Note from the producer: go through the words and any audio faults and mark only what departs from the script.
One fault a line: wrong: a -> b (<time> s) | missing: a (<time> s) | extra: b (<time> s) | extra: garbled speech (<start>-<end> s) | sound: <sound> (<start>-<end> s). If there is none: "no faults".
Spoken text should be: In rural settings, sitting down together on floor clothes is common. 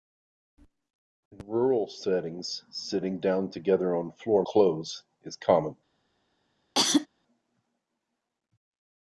sound: cough (6.7-7.1 s)